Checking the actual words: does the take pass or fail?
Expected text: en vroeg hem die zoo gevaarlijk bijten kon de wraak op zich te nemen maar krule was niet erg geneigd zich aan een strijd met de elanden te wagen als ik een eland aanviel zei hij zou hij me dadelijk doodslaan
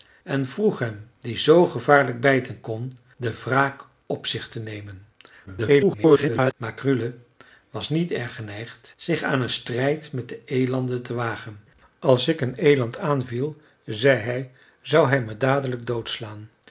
fail